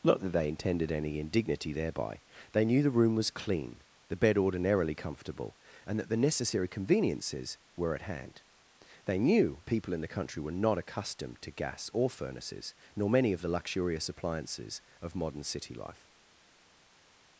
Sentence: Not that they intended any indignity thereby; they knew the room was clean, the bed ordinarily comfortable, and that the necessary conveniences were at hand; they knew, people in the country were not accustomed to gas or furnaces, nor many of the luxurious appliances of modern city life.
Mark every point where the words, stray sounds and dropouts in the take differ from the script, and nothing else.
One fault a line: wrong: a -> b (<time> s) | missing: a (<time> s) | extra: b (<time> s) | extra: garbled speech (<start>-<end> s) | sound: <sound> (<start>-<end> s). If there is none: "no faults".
no faults